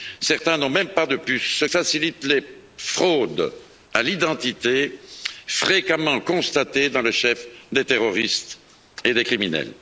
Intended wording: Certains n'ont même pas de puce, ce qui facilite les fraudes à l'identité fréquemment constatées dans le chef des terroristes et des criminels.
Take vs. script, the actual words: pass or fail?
fail